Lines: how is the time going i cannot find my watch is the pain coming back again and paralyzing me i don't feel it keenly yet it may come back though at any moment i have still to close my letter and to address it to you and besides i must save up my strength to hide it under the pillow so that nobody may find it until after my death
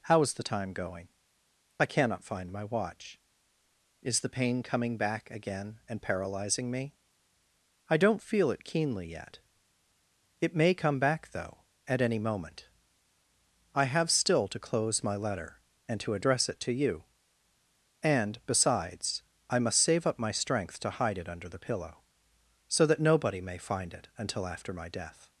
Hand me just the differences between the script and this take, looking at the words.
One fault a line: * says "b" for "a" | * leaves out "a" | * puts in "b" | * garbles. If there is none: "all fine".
all fine